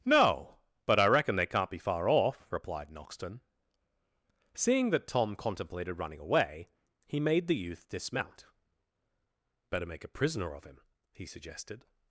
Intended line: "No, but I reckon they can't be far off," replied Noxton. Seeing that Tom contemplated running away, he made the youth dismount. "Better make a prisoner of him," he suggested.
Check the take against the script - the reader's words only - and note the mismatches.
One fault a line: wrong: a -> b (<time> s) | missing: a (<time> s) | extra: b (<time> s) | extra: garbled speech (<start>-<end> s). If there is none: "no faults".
no faults